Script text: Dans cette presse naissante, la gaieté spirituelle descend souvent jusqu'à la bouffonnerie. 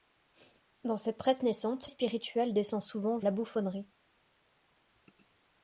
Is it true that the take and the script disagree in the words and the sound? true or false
true